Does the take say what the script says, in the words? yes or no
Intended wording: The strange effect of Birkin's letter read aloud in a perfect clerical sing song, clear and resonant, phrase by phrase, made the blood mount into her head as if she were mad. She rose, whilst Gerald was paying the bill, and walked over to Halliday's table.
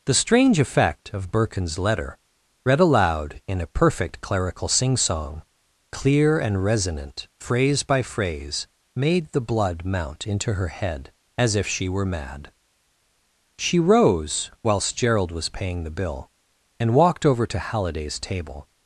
yes